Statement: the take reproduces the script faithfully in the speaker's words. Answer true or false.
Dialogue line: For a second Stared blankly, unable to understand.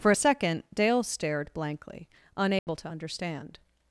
false